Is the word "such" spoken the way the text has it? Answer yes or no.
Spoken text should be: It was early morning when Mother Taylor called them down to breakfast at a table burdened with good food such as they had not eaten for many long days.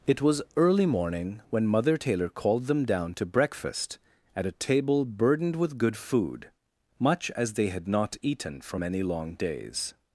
no